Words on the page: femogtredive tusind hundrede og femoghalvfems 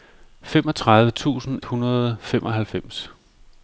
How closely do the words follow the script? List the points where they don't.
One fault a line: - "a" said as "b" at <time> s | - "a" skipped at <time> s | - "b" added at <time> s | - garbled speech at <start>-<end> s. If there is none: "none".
none